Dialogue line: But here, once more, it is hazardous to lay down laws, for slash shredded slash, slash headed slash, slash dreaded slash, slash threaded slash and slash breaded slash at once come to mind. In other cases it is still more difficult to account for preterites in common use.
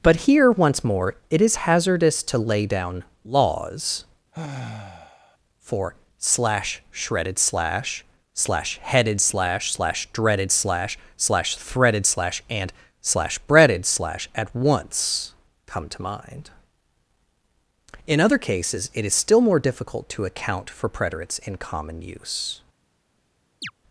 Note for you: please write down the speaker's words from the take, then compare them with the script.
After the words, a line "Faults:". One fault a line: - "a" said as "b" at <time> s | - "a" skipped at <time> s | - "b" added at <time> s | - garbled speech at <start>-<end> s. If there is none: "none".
But here, once more, it is hazardous to lay down laws, for slash shredded slash, slash headed slash, slash dreaded slash, slash threaded slash and slash breaded slash at once come to mind. In other cases it is still more difficult to account for preterites in common use.
Faults:
none